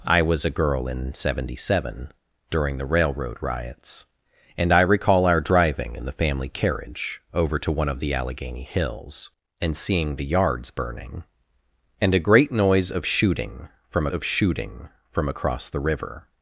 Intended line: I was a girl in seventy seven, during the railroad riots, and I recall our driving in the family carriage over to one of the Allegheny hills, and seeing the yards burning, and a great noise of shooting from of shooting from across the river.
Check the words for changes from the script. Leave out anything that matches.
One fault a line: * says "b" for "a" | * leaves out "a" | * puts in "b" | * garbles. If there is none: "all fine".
all fine